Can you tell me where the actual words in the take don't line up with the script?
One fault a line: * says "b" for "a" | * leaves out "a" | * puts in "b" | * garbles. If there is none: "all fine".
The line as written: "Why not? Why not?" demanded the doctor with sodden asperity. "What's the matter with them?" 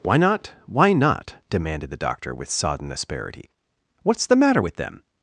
all fine